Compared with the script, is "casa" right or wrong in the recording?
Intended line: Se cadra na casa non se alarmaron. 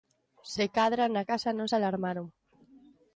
right